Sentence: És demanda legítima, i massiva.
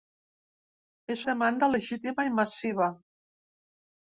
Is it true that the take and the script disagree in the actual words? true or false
false